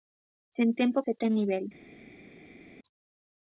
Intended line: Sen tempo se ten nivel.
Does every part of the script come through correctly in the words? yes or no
yes